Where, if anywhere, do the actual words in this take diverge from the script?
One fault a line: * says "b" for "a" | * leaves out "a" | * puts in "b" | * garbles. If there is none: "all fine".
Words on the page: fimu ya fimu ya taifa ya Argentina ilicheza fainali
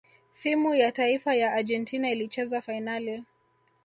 * leaves out "fimu ya"